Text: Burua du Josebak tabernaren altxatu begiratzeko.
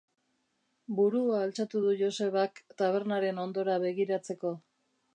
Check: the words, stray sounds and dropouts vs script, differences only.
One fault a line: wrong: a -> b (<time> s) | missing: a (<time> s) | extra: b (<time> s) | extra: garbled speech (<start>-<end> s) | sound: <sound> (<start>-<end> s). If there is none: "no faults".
extra: altxatu (1.5 s)
wrong: altxatu -> hondora (3.5 s)